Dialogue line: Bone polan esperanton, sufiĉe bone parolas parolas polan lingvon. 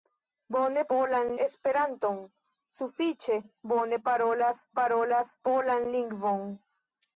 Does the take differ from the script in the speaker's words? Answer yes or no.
no